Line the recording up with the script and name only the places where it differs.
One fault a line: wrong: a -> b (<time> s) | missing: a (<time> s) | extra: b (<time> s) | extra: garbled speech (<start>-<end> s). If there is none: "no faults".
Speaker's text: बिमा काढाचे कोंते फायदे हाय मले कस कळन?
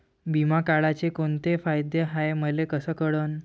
no faults